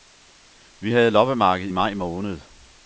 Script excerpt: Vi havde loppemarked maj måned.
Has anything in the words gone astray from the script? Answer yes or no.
no